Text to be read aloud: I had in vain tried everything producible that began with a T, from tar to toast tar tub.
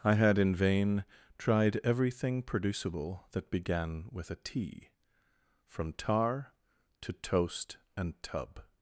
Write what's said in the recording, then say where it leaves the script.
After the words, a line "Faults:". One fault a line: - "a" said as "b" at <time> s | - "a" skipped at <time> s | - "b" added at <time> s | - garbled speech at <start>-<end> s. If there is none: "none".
I had in vain tried everything producible that began with a T, from tar to toast and tub.
Faults:
- "tar" said as "and" at 8.0 s